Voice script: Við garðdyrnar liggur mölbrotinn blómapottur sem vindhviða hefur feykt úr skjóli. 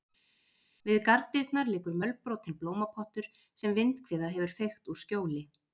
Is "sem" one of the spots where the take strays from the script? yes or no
no